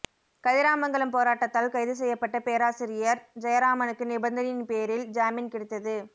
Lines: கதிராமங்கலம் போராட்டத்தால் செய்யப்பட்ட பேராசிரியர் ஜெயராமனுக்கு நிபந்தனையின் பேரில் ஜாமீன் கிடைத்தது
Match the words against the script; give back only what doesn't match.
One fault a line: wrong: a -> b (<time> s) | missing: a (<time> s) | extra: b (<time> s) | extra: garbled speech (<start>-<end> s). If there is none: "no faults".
extra: கைது (1.7 s)